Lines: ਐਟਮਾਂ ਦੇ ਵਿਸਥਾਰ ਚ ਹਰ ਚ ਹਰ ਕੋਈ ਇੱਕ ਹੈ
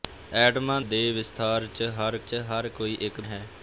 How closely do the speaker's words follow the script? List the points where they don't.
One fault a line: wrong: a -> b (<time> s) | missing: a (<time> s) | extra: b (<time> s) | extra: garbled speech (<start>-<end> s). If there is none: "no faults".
no faults